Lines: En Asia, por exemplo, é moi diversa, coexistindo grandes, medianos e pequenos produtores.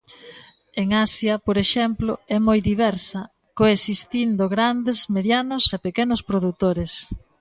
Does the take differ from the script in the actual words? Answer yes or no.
no